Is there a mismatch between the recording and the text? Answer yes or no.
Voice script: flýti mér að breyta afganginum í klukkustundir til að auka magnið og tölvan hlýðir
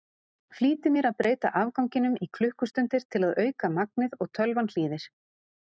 no